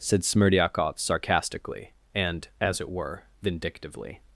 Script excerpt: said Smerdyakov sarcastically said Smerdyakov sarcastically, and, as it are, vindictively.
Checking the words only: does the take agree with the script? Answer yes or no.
no